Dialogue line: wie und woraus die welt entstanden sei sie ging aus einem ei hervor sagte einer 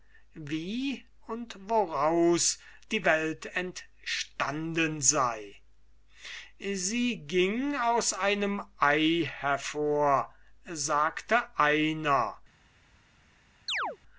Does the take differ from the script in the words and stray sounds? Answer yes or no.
yes